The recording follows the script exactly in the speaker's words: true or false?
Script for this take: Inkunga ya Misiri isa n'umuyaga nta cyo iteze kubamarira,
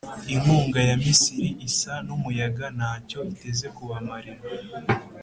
true